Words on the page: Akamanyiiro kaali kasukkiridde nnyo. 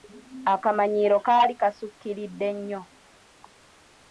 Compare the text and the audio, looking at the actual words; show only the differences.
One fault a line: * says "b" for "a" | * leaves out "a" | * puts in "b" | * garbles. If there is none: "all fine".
all fine